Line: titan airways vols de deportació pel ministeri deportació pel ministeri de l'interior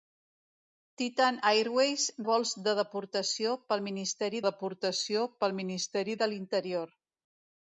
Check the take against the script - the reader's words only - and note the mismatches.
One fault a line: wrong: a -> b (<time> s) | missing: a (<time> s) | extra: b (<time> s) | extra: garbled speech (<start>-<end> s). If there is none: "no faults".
no faults